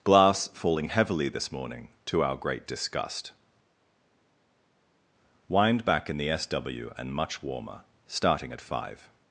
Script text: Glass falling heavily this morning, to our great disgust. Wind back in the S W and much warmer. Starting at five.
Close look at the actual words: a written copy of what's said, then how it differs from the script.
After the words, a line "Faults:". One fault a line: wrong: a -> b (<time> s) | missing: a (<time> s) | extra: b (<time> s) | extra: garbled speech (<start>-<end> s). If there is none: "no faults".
Glass falling heavily this morning, to our great disgust. Wind back in the S W and much warmer. Starting at five.
Faults:
no faults